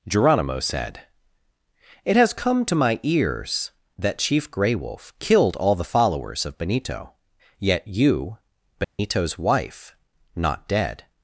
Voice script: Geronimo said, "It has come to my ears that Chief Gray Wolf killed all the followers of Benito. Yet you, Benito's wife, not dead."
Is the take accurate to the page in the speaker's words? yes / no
yes